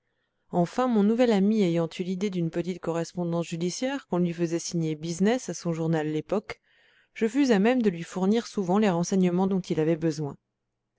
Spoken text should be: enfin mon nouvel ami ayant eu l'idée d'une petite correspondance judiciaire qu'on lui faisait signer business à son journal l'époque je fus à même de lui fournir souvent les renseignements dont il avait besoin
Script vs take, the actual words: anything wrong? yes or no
no